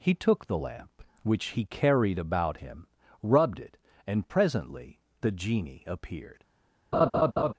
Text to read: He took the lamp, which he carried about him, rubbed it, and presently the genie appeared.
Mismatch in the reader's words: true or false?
false